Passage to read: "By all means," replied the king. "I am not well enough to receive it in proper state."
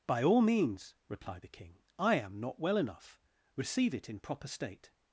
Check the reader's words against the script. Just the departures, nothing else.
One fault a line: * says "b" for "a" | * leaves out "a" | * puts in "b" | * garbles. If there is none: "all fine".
* leaves out "to"